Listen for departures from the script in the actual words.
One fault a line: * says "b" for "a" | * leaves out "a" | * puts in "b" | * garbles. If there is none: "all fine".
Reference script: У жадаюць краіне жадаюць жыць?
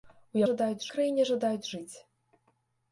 all fine